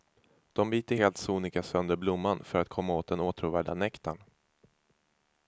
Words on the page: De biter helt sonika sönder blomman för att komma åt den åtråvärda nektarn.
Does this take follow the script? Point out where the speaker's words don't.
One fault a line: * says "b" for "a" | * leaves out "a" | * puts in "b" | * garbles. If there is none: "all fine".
all fine